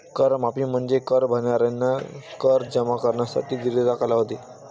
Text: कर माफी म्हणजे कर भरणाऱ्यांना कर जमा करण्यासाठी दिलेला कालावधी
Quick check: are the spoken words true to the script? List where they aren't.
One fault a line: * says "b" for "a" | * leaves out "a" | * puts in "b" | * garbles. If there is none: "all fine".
all fine